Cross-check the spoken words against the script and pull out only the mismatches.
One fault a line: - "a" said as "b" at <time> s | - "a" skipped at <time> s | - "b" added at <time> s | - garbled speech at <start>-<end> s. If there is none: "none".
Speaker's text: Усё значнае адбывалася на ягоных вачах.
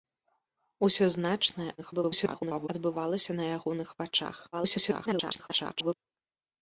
- garbled speech at 1.8-2.7 s
- garbled speech at 4.5-5.9 s